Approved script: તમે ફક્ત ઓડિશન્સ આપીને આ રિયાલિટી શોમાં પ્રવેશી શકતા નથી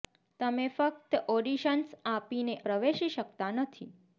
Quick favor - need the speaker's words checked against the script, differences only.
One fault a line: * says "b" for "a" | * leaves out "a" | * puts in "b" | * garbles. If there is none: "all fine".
* leaves out "આ રિયાલિટી શોમાં"